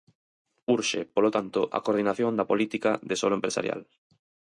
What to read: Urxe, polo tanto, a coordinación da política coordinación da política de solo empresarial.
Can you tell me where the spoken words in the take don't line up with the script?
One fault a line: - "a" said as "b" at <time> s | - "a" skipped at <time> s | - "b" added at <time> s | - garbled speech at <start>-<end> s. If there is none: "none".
- "coordinación da política" skipped at 2.9 s